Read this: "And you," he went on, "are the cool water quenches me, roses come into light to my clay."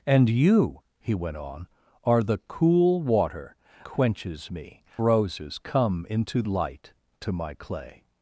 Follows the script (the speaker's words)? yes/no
yes